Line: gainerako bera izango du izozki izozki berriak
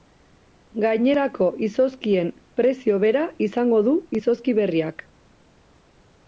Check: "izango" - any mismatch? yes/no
no